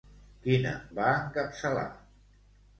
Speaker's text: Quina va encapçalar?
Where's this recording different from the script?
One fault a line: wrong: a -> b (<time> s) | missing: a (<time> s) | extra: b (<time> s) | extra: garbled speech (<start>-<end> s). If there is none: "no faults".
no faults